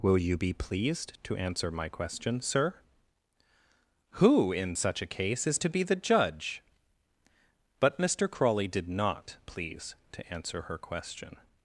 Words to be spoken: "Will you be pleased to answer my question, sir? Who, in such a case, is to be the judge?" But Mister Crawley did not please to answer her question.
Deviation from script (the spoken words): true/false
false